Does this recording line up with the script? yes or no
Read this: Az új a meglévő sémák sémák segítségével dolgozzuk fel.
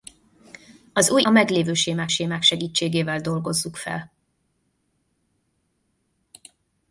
yes